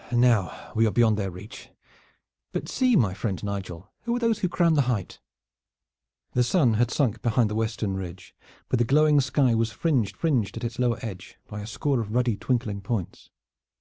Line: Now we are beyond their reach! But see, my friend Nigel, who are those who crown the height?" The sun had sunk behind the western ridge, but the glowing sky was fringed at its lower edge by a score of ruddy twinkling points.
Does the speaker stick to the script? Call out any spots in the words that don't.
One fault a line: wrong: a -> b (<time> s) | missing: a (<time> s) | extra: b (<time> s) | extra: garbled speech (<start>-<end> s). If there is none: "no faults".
extra: fringed (10.1 s)